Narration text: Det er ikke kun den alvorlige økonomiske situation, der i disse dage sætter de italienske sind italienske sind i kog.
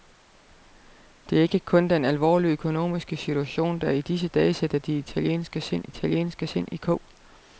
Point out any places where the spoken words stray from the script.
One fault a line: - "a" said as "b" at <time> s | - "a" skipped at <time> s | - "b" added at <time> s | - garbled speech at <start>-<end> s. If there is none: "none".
none